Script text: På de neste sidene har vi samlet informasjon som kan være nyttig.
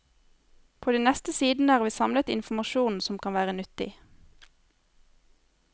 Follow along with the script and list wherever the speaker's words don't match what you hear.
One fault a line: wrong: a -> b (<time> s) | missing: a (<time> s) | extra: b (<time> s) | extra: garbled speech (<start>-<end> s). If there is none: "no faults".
no faults